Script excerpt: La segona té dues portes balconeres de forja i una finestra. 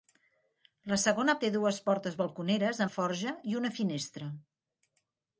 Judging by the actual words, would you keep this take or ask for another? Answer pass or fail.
pass